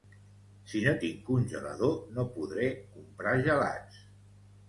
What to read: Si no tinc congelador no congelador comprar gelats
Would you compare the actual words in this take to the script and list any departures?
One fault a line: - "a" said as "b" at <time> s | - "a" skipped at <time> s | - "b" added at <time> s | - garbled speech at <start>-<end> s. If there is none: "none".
- "congelador" said as "podré" at 2.4 s